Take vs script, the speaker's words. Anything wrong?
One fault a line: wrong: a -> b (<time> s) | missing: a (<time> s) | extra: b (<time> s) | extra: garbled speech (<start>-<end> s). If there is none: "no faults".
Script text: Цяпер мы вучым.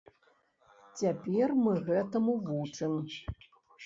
extra: гэтаму (1.9 s)